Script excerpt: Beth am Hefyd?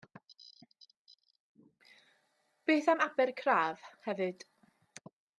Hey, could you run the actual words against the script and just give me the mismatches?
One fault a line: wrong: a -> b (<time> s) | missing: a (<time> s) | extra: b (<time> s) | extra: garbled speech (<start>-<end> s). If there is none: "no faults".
extra: Abercraf (3.1 s)